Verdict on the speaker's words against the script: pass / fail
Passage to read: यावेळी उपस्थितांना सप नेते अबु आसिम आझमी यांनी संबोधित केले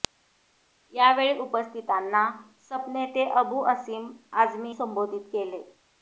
fail